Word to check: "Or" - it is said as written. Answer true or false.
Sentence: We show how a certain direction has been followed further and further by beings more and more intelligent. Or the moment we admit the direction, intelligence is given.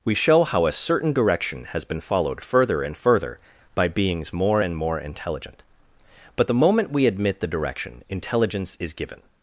false